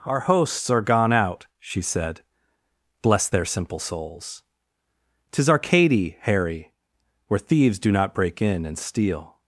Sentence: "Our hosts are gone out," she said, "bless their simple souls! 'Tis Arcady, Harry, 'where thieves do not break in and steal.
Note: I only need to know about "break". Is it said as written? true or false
true